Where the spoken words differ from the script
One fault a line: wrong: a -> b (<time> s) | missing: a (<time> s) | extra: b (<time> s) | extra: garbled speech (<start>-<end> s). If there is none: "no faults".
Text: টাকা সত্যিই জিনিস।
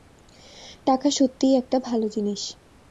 extra: একটা ভালো (1.6 s)